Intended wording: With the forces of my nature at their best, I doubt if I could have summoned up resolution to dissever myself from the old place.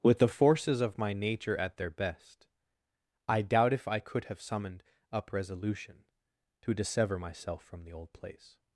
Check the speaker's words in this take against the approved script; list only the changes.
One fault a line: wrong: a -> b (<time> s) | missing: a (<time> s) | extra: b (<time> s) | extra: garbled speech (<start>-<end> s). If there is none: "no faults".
no faults